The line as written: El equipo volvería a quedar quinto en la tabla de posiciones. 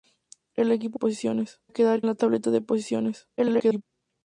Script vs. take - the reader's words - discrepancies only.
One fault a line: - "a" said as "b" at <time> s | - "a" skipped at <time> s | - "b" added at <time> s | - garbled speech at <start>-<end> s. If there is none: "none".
- "volvería" said as "posiciones" at 0.9 s
- "quinto en" skipped at 2.0 s
- garbled speech at 3.4-3.8 s